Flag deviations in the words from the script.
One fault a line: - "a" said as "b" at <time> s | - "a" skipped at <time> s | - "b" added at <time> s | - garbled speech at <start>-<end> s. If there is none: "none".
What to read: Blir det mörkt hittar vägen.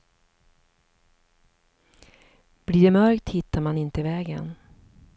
- "man inte" added at 3.6 s